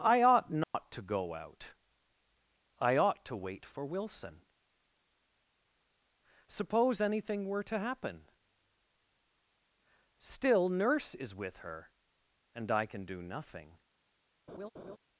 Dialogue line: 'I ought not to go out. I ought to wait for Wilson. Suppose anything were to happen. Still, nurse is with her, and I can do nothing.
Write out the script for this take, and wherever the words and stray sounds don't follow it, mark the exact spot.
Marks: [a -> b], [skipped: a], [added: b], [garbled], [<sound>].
'I ought not [dropout] to go out. I ought to wait for Wilson. Suppose anything were to happen. Still, nurse is with her, and I can do nothing. [laugh]